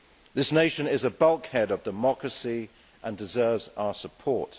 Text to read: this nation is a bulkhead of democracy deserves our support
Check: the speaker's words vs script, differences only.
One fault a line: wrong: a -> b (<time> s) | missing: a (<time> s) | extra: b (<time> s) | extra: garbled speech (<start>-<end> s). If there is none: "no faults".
extra: and (3.0 s)